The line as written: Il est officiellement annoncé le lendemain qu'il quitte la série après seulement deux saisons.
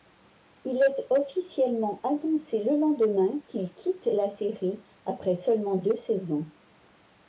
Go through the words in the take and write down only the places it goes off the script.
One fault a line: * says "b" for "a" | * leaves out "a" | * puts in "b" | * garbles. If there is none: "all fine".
all fine